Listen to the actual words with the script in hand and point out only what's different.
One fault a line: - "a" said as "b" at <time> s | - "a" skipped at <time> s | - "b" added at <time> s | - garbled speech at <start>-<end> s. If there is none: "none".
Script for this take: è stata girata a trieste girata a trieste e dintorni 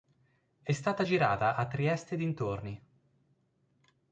- "girata a trieste" skipped at 2.1 s